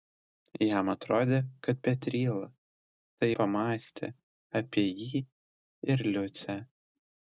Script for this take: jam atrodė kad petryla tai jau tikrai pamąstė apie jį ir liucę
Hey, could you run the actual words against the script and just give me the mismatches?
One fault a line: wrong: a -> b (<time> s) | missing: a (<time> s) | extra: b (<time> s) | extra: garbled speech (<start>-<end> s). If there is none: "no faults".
missing: jau tikrai (3.3 s)